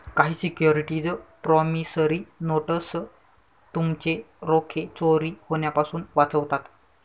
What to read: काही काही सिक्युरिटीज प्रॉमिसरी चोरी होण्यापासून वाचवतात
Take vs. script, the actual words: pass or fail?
fail